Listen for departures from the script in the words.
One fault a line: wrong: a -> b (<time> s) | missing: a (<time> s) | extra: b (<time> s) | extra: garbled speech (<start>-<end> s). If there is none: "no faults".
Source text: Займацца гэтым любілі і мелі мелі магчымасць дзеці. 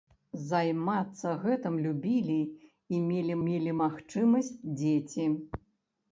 no faults